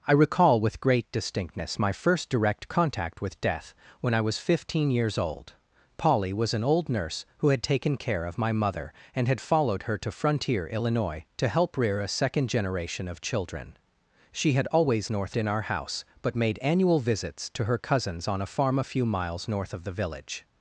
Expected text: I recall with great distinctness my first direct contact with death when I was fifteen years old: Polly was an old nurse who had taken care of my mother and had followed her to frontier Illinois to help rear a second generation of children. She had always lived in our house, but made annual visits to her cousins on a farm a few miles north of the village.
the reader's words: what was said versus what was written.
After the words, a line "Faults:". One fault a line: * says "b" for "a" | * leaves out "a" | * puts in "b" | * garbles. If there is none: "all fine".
I recall with great distinctness my first direct contact with death when I was fifteen years old: Polly was an old nurse who had taken care of my mother and had followed her to frontier Illinois to help rear a second generation of children. She had always north in our house, but made annual visits to her cousins on a farm a few miles north of the village.
Faults:
* says "north" for "lived"